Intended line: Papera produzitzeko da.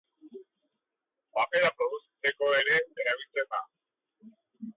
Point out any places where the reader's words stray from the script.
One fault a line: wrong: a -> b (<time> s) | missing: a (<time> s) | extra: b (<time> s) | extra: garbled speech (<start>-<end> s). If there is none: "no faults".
extra: ere erabiltzen (2.6 s)